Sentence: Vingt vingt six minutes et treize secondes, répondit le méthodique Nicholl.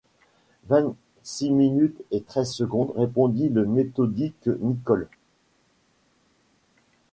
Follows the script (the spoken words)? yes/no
no